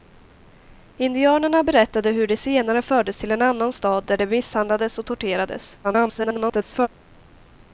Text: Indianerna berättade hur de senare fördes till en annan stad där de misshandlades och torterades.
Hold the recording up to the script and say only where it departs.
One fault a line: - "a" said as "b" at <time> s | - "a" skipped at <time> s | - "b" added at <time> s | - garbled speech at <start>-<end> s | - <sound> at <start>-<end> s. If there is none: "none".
- garbled speech at 5.8-6.9 s